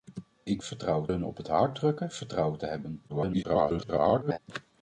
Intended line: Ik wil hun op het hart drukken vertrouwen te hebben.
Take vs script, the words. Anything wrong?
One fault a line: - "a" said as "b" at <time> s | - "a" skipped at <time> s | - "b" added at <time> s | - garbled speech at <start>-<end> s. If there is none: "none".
- "wil" said as "vertrouwen" at 0.6 s
- garbled speech at 3.1-4.4 s